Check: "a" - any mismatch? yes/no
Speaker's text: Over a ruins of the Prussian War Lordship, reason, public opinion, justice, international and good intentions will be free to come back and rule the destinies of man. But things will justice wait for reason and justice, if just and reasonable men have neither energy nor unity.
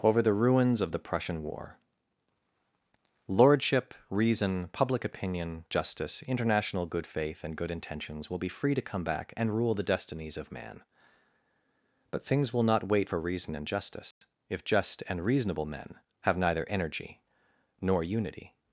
yes